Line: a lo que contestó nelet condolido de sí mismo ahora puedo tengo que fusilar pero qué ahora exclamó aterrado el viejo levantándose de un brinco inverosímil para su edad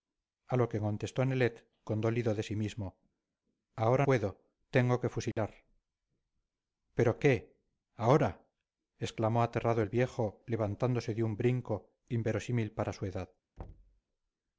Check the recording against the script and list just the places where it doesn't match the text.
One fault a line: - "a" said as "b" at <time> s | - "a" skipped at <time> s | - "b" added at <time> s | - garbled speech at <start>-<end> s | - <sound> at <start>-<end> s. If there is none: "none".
- dropout at 5.3-5.4 s
- thud at 13.6-14.0 s